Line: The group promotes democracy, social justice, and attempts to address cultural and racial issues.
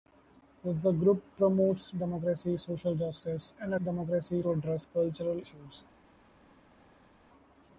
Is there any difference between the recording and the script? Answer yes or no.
yes